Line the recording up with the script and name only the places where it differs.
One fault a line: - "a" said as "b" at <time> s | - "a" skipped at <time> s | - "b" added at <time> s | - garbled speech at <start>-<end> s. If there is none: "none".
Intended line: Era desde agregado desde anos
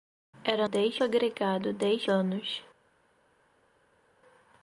none